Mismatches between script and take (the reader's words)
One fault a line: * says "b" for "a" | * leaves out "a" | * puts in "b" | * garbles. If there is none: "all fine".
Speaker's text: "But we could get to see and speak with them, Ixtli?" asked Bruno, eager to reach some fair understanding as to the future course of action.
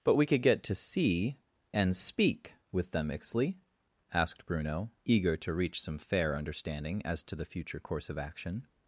all fine